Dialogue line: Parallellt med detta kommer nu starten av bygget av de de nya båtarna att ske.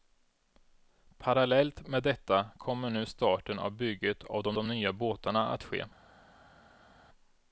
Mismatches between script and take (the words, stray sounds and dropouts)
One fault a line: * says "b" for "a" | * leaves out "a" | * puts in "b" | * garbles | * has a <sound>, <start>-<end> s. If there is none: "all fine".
all fine